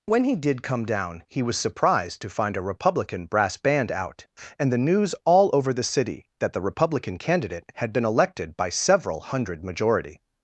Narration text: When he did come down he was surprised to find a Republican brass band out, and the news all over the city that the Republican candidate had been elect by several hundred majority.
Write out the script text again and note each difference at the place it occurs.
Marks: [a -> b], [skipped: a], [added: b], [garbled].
When he did come down he was surprised to find a Republican brass band out, and the news all over the city that the Republican candidate had been [elect -> elected] by several hundred majority.